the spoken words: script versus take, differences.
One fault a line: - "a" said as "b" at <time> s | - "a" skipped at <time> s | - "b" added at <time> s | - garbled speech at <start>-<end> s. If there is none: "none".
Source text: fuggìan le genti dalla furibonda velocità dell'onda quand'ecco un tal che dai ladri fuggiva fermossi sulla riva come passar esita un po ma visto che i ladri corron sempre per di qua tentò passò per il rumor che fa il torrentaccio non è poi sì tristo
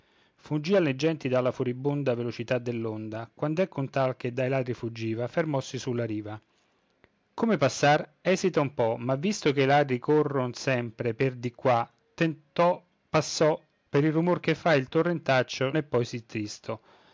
- "non" skipped at 15.7 s